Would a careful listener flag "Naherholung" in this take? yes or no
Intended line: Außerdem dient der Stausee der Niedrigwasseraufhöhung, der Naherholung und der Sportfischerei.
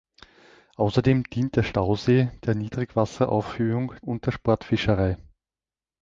yes